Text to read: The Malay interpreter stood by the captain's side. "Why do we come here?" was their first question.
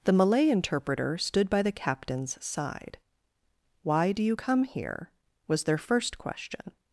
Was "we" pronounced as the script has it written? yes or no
no